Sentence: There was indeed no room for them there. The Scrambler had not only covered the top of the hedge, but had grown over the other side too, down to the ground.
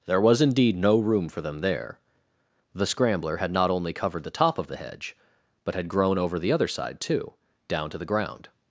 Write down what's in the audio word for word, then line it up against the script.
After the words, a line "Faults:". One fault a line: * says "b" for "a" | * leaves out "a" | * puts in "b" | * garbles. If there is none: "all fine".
There was indeed no room for them there. The Scrambler had not only covered the top of the hedge, but had grown over the other side too, down to the ground.
Faults:
all fine